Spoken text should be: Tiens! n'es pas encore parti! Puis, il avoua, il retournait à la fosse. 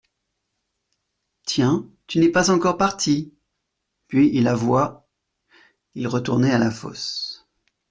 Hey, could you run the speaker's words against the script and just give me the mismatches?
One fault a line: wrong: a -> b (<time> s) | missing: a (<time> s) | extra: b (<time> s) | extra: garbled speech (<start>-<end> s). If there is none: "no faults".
extra: tu (2.1 s)